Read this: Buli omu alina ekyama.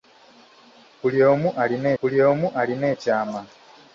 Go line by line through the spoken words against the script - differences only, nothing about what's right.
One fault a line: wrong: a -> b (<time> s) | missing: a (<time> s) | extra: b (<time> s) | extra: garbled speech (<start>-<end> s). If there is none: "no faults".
extra: buli omu alina (2.0 s)